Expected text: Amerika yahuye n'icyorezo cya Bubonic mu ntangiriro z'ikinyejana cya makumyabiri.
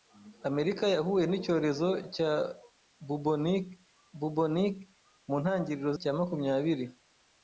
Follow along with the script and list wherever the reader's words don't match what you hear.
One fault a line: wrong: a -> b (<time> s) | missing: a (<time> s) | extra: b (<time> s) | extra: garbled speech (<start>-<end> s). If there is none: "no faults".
extra: Bubonic (4.2 s)
missing: z'ikinyejana (5.9 s)